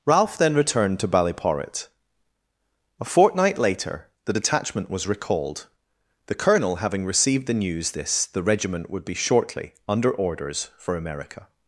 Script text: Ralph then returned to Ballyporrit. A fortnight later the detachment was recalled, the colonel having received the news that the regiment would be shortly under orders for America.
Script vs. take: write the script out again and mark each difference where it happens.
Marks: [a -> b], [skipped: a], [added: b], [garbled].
Ralph then returned to Ballyporrit. A fortnight later the detachment was recalled, the colonel having received the news [that -> this] the regiment would be shortly under orders for America.